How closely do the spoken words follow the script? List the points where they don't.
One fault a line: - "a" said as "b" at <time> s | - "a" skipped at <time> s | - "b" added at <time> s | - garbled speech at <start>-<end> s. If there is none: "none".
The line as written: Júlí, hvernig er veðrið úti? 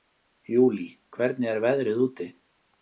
none